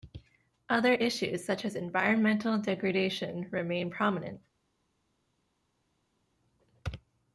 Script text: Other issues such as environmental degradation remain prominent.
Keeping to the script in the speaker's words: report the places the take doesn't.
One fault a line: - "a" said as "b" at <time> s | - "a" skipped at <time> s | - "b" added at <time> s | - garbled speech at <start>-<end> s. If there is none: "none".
none